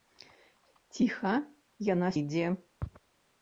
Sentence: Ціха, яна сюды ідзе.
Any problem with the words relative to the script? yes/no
yes